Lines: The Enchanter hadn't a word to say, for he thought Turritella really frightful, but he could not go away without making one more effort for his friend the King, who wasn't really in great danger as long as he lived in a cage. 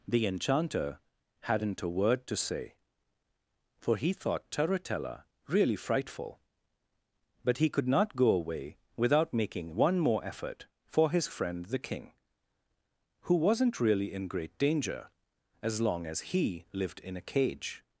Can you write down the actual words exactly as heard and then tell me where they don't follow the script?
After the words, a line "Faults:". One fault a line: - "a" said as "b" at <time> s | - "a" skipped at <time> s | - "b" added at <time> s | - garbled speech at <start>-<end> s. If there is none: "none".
The Enchanter hadn't a word to say, for he thought Turritella really frightful, but he could not go away without making one more effort for his friend the King, who wasn't really in great danger as long as he lived in a cage.
Faults:
none